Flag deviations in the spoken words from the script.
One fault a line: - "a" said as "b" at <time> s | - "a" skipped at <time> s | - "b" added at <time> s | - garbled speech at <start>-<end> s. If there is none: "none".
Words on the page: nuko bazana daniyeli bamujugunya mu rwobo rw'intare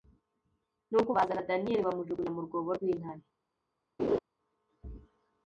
none